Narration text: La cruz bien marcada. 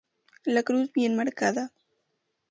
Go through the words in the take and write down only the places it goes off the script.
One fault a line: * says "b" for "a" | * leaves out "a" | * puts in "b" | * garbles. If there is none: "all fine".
all fine